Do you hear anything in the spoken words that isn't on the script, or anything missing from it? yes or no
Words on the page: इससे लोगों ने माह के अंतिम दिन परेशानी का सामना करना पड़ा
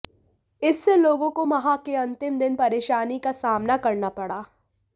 yes